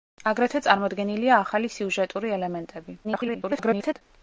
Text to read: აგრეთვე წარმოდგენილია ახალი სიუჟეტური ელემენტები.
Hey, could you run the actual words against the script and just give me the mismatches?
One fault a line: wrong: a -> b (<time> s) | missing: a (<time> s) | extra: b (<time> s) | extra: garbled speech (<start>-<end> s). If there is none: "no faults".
extra: garbled speech (3.0-4.0 s)